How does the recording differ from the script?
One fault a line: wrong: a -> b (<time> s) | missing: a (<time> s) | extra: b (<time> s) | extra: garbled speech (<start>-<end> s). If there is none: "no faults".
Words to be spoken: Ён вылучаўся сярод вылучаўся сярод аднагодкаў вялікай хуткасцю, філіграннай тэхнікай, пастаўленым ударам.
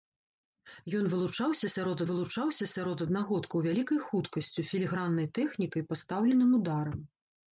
no faults